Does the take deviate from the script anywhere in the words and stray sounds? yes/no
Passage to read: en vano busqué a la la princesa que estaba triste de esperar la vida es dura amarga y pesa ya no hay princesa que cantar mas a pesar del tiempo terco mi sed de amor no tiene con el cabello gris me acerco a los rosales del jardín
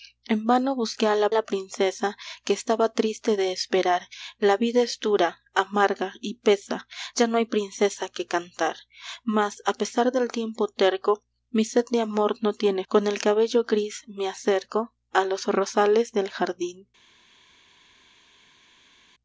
no